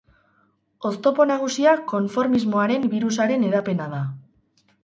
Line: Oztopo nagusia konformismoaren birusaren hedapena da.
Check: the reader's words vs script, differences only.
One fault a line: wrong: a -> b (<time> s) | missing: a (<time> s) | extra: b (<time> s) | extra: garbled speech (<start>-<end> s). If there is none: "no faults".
no faults